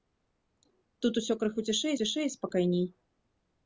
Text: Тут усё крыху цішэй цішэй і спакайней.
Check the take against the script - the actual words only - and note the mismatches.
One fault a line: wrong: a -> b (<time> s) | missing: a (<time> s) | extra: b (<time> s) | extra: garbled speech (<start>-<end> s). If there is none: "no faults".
no faults